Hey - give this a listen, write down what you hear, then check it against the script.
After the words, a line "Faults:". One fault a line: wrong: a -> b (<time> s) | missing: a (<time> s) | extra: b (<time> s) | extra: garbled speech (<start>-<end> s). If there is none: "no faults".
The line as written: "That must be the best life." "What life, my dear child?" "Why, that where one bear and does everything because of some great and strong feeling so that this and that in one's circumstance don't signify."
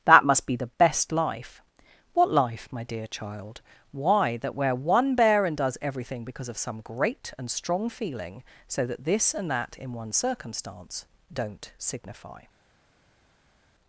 "That must be the best life." "What life, my dear child?" "Why, that where one bear and does everything because of some great and strong feeling so that this and that in one's circumstance don't signify."
Faults:
no faults